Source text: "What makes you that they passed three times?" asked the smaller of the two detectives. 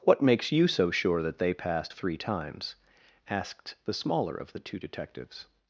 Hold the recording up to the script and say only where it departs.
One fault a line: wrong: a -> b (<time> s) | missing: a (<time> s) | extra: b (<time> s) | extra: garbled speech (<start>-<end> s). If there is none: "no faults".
extra: so sure (0.7 s)